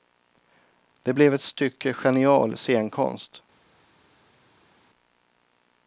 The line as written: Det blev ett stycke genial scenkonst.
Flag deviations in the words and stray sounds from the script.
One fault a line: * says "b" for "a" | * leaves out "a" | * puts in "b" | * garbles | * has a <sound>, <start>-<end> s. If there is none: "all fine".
all fine